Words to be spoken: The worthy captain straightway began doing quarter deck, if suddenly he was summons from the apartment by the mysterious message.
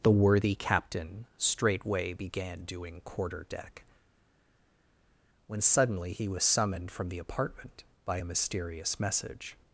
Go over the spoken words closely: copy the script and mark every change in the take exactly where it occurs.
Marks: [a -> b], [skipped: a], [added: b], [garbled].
The worthy captain straightway began doing quarter deck, [if -> when] suddenly he was [summons -> summoned] from the apartment by [the -> a] mysterious message.